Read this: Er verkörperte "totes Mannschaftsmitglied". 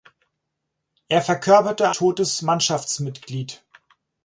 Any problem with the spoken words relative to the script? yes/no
no